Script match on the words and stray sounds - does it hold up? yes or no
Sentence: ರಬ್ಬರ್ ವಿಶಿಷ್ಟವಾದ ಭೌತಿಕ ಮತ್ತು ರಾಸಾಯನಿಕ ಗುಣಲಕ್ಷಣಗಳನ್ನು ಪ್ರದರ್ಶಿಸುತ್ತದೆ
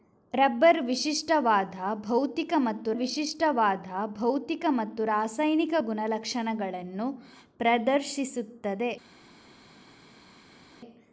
no